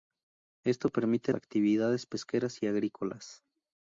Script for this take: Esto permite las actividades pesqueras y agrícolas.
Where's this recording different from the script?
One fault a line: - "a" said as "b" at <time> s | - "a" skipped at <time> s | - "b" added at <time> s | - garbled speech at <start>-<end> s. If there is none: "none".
- "las" skipped at 1.3 s